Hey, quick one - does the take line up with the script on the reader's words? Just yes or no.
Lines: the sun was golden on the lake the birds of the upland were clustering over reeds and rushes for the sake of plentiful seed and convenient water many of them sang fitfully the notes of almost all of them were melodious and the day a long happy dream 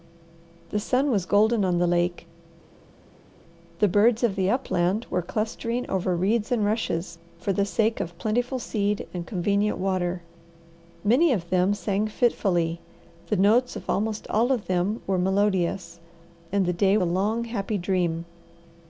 yes